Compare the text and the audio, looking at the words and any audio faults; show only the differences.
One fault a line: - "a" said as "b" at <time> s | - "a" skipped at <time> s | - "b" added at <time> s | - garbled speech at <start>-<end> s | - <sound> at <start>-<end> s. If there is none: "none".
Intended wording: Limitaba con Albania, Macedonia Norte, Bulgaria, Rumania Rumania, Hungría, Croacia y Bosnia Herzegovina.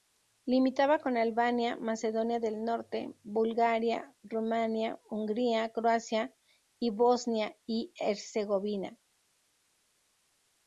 - "del" added at 2.4 s
- "Rumania" skipped at 5.0 s
- "y" added at 7.7 s